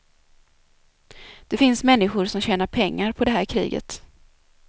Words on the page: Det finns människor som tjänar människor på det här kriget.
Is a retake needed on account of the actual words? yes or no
yes